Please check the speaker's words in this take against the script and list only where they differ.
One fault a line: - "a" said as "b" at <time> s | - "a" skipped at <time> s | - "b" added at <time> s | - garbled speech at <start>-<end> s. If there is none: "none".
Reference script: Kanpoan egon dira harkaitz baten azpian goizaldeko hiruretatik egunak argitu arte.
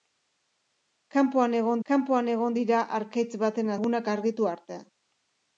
- "kanpoan egon" added at 1.9 s
- "azpian goizaldeko hiruretatik" skipped at 3.7 s